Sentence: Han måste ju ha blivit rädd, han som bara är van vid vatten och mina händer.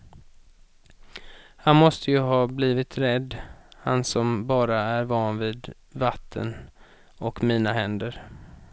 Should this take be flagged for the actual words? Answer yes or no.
no